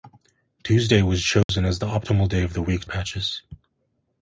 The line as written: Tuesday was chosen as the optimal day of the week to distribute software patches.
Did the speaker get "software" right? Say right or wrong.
wrong